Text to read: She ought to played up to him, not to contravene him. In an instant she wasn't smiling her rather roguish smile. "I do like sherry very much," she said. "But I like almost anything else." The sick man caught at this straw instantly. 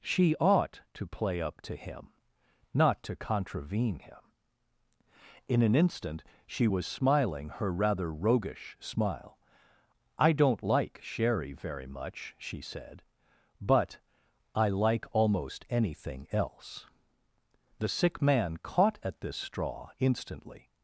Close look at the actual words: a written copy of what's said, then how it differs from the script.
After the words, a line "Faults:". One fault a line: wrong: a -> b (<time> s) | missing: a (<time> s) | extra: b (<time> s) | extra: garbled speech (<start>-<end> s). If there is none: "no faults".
She ought to play up to him, not to contravene him. In an instant she was smiling her rather roguish smile. "I don't like sherry very much," she said. "But I like almost anything else." The sick man caught at this straw instantly.
Faults:
wrong: played -> play (1.1 s)
wrong: wasn't -> was (6.7 s)
wrong: do -> don't (10.3 s)